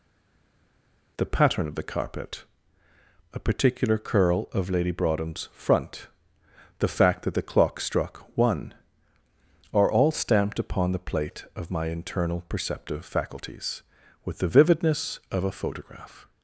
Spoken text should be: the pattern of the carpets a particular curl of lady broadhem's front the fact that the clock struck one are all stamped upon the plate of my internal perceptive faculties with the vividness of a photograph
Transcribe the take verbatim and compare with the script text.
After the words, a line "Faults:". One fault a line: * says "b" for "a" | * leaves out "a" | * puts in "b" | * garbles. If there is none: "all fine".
the pattern of the carpet a particular curl of lady broadhem's front the fact that the clock struck one are all stamped upon the plate of my internal perceptive faculties with the vividness of a photograph
Faults:
* says "carpet" for "carpets"